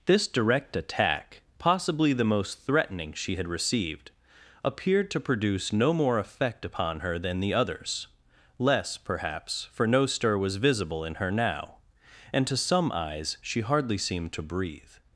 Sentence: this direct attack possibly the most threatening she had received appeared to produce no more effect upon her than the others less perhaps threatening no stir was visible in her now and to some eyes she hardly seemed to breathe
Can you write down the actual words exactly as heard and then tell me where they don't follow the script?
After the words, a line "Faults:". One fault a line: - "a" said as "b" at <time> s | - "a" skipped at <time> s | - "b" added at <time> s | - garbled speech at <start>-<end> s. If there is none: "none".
this direct attack possibly the most threatening she had received appeared to produce no more effect upon her than the others less perhaps for no stir was visible in her now and to some eyes she hardly seemed to breathe
Faults:
- "threatening" said as "for" at 9.7 s